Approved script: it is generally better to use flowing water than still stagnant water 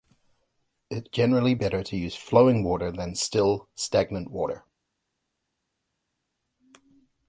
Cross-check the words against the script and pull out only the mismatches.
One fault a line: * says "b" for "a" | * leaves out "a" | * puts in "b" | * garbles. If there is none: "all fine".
* leaves out "is"